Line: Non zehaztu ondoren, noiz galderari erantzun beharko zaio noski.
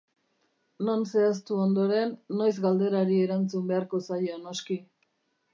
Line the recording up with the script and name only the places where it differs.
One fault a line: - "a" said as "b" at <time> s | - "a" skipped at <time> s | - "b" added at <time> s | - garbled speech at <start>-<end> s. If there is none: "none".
none